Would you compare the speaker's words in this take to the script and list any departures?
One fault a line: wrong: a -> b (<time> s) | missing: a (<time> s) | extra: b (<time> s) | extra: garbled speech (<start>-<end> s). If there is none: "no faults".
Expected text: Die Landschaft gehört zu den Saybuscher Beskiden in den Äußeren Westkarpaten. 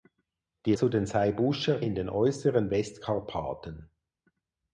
missing: Landschaft gehört (0.7 s)
missing: Beskiden (1.8 s)